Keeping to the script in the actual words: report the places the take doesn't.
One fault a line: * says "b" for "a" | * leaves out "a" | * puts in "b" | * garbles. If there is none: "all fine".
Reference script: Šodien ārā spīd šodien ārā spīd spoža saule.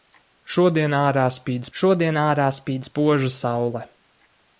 all fine